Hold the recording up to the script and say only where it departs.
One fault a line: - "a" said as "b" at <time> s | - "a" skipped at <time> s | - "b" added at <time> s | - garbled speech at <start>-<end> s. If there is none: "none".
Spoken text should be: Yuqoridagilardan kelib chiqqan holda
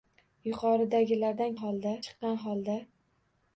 - "kelib" said as "holda" at 1.6 s